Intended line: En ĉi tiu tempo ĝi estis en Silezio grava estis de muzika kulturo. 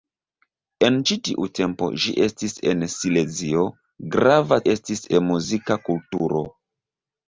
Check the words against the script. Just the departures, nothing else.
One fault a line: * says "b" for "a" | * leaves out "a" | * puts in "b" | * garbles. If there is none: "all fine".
all fine